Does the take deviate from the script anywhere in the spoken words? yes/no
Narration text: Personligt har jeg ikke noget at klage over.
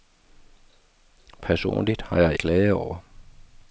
yes